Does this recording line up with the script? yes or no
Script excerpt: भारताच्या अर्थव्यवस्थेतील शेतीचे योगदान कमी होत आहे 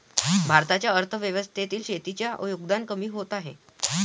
yes